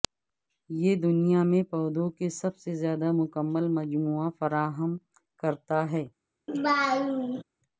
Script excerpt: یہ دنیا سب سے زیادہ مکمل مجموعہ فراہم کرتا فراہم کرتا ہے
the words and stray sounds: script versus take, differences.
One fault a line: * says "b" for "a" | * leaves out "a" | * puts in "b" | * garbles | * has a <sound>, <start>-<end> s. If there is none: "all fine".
* puts in "میں پودوں کے"
* leaves out "فراہم کرتا"
* has a laugh, 6.5-7.4 s